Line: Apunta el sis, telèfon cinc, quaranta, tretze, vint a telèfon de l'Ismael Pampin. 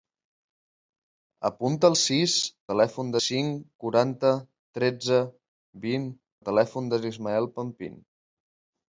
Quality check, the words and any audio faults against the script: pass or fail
pass